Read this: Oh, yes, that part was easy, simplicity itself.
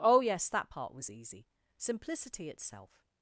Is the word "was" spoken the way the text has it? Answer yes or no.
yes